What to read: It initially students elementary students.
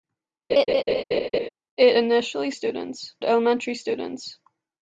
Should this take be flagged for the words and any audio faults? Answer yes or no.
yes